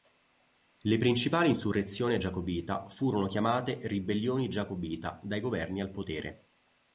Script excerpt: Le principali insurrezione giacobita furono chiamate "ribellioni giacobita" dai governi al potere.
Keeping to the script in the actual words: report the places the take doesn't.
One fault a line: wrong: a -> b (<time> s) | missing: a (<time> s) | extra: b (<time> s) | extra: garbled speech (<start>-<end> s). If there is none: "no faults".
no faults